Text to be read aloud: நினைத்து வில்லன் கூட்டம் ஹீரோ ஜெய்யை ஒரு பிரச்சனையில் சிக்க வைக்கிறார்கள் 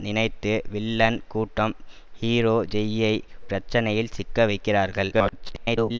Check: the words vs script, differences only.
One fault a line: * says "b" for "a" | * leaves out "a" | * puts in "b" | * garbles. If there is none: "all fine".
* leaves out "ஒரு"
* garbles